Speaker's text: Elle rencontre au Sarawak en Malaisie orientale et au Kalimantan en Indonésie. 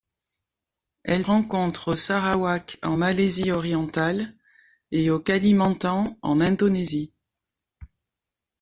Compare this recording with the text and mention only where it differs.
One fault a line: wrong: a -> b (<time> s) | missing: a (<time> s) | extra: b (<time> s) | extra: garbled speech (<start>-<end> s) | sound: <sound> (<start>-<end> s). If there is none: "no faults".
no faults